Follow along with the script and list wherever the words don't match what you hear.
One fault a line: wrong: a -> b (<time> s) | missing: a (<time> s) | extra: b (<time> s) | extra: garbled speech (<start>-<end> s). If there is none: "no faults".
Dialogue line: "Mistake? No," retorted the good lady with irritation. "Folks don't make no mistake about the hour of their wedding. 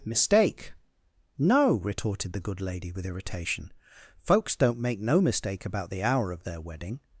no faults